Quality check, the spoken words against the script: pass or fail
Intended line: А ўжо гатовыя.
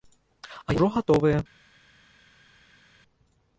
pass